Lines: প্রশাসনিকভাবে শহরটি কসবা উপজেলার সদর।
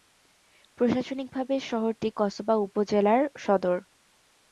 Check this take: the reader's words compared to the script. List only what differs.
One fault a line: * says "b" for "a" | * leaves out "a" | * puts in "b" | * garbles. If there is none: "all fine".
all fine